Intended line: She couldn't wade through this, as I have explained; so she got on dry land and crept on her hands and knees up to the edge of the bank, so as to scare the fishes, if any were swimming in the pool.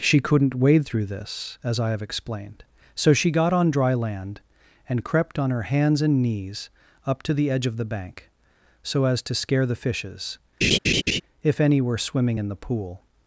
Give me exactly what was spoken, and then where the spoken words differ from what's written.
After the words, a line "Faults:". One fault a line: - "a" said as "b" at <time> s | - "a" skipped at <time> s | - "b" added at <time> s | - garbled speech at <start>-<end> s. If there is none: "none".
She couldn't wade through this, as I have explained; so she got on dry land and crept on her hands and knees up to the edge of the bank, so as to scare the fishes, if any were swimming in the pool.
Faults:
none